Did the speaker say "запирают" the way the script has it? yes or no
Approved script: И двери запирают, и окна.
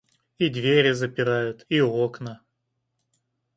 yes